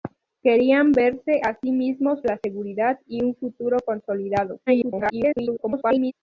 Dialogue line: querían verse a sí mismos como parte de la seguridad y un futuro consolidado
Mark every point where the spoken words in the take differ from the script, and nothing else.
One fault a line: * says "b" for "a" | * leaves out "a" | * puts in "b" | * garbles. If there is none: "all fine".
* leaves out "como parte de"
* garbles